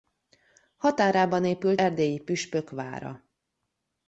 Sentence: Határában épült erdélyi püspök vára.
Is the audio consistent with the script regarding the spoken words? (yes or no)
yes